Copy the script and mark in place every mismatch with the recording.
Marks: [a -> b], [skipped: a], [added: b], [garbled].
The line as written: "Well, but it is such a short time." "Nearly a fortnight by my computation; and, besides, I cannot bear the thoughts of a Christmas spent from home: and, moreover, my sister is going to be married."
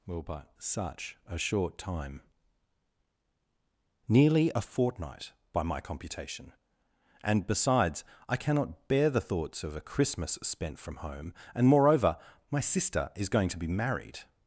"Well, but [skipped: it is] such a short time." "Nearly a fortnight by my computation; and, besides, I cannot bear the thoughts of a Christmas spent from home: and, moreover, my sister is going to be married."